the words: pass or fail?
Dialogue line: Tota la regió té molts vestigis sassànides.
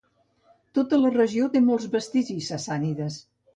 pass